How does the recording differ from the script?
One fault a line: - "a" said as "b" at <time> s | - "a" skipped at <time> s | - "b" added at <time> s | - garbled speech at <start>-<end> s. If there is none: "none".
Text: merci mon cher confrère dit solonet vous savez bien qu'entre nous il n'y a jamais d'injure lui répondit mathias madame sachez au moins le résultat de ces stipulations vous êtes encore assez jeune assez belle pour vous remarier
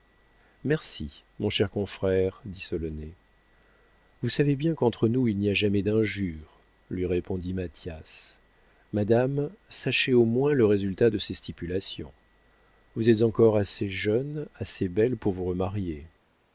none